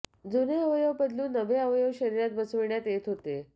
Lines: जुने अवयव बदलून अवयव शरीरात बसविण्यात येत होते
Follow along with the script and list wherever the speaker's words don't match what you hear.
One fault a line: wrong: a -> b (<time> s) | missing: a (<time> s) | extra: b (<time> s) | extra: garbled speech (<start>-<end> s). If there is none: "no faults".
extra: नवे (1.3 s)